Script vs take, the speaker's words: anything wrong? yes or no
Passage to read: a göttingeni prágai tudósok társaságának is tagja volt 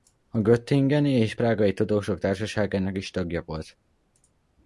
yes